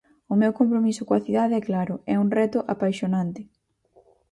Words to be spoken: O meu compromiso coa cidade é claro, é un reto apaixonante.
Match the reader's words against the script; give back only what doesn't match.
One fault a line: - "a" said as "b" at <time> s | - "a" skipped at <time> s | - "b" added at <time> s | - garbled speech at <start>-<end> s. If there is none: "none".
none